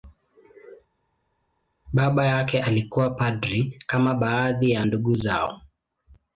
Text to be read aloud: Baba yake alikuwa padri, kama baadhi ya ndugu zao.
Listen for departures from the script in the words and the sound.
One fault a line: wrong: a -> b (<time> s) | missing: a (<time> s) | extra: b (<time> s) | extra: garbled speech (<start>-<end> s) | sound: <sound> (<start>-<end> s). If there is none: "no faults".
no faults